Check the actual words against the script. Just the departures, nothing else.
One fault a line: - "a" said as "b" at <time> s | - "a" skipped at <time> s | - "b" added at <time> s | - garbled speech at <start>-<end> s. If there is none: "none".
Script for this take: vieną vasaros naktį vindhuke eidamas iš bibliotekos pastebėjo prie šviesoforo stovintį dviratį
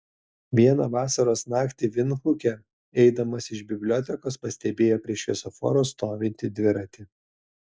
none